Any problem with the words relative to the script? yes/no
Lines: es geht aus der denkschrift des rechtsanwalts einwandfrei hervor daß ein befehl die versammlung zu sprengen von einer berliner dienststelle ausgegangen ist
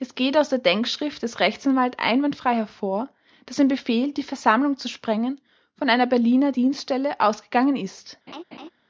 no